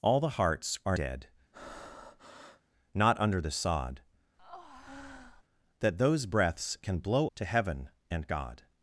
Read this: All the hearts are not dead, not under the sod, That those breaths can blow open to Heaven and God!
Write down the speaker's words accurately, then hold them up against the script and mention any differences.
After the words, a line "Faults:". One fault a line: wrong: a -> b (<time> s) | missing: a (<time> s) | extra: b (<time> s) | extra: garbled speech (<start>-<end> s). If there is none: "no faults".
All the hearts are dead, not under the sod, That those breaths can blow to Heaven and God!
Faults:
missing: not (1.0 s)
missing: open (7.3 s)